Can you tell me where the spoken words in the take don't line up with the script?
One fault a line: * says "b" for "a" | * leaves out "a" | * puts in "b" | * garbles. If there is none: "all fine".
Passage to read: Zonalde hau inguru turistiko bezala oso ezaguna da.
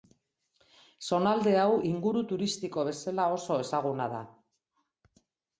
all fine